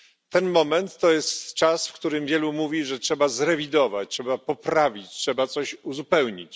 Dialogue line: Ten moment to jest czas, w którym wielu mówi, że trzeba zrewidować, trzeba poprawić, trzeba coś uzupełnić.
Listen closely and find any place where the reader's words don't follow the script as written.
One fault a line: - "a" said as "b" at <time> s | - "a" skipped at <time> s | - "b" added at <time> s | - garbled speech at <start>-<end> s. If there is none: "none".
none